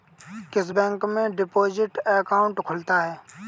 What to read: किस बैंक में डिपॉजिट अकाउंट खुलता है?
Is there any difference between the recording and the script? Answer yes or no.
no